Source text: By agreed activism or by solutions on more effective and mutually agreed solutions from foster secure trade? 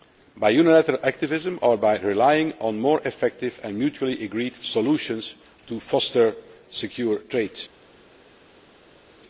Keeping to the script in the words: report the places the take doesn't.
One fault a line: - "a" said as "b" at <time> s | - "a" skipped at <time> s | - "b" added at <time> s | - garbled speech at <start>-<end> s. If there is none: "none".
- "agreed" said as "unilateral" at 0.5 s
- "solutions" said as "relying" at 2.0 s
- "from" said as "to" at 5.7 s